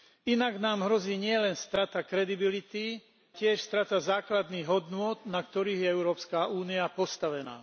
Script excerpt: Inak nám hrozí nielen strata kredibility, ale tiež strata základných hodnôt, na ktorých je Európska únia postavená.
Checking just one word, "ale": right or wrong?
wrong